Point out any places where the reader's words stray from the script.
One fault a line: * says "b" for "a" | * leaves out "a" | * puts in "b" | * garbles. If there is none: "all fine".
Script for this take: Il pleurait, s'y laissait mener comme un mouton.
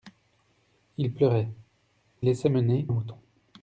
* leaves out "s'y"
* leaves out "comme"